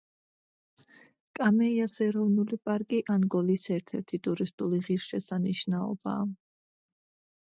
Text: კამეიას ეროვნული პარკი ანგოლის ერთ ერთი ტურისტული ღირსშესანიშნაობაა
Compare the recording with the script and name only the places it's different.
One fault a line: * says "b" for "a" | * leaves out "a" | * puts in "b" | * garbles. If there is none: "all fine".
all fine